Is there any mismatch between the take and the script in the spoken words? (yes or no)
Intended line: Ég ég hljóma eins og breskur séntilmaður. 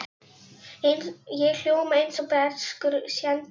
yes